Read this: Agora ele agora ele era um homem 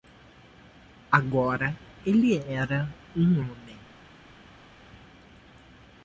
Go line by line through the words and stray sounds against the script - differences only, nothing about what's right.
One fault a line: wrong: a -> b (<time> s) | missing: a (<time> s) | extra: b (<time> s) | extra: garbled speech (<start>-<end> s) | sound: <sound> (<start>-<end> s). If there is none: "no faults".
missing: agora ele (2.4 s)